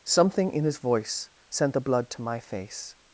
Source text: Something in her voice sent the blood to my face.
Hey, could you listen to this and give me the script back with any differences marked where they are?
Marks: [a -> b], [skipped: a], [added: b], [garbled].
Something in [her -> his] voice sent the blood to my face.